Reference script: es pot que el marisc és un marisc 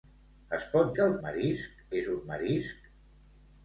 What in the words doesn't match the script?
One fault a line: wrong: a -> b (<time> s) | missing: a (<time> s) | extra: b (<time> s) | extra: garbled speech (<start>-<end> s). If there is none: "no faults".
no faults